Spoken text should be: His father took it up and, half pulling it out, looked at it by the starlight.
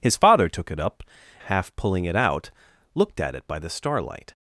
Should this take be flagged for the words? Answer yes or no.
yes